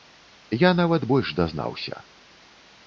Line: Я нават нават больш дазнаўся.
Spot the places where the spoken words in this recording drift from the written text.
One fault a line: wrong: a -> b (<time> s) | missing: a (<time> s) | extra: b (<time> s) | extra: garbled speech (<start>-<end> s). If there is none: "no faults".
missing: нават (1.1 s)